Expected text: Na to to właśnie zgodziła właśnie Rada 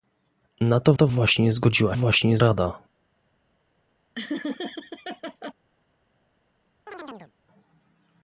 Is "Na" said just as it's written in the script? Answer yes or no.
yes